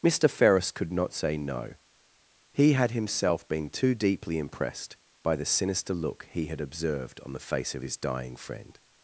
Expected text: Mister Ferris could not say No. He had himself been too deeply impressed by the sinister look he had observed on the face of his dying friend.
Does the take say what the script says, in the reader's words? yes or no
yes